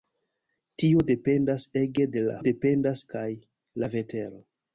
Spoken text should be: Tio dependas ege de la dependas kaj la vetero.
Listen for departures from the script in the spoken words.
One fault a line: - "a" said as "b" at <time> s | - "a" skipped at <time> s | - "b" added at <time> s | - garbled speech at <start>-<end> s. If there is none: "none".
none